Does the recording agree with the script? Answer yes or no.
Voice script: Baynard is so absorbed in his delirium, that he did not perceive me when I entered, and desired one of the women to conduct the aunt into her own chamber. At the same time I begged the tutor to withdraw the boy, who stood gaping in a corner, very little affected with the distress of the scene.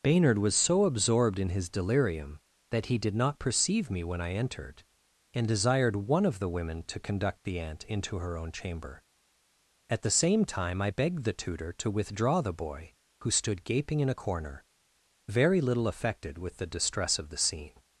no